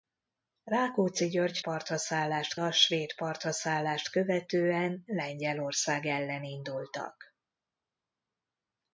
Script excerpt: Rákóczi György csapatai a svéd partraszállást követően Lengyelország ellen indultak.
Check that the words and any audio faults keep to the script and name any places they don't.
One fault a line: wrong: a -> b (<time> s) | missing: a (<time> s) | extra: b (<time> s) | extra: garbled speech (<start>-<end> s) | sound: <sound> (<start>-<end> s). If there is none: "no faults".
wrong: csapatai -> partraszállást (1.6 s)